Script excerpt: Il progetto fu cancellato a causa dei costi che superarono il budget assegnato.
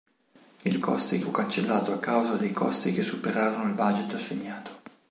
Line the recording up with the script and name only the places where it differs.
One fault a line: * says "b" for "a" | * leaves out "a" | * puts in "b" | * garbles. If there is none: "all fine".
* says "costi" for "progetto"